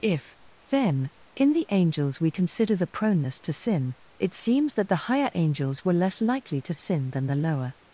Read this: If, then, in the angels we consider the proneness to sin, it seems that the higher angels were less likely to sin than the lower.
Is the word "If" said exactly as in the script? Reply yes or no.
yes